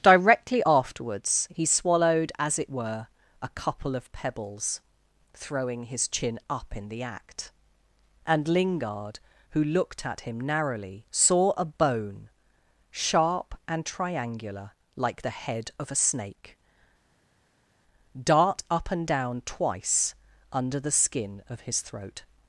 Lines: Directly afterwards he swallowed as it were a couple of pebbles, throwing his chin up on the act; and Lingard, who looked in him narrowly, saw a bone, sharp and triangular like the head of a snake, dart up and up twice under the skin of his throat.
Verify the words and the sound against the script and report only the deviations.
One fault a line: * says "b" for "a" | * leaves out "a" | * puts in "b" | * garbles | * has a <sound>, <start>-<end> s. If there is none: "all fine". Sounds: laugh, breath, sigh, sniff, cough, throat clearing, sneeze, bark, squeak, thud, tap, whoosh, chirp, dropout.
* says "in" for "on"
* says "at" for "in"
* says "down" for "up"